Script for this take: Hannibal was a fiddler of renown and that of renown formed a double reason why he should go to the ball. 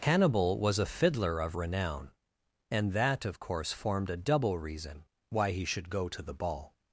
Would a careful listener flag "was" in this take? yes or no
no